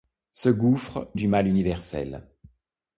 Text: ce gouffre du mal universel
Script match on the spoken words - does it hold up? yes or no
yes